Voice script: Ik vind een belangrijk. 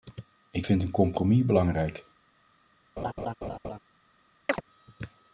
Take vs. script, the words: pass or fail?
fail